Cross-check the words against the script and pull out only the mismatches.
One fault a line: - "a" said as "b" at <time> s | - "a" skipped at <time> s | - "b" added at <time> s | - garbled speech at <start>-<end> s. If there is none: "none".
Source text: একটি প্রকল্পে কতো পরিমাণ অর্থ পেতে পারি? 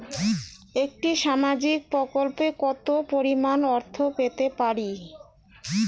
- "সামাজিক" added at 1.2 s